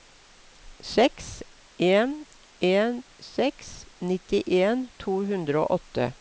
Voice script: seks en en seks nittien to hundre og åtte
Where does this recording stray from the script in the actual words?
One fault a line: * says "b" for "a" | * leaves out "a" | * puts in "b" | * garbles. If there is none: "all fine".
all fine